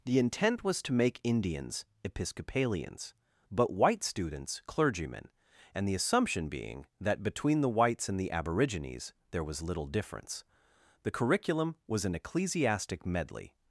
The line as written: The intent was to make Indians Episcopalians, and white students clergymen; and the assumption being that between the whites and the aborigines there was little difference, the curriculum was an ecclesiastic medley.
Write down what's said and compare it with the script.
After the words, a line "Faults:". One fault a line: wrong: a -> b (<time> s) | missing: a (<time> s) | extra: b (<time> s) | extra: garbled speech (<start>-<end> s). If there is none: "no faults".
The intent was to make Indians Episcopalians, but white students clergymen; and the assumption being that between the whites and the aborigines there was little difference, the curriculum was an ecclesiastic medley.
Faults:
wrong: and -> but (3.5 s)